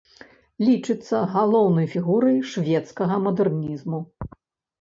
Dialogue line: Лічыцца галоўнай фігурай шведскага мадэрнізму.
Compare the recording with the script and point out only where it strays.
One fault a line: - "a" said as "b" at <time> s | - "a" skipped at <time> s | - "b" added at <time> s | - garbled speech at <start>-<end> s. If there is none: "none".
none